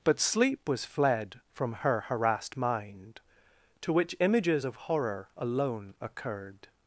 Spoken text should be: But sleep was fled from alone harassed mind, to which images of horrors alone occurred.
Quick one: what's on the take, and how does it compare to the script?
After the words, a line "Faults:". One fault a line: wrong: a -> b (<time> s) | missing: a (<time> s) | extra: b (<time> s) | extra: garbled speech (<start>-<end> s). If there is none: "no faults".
But sleep was fled from her harassed mind, to which images of horror alone occurred.
Faults:
wrong: alone -> her (1.7 s)
wrong: horrors -> horror (4.8 s)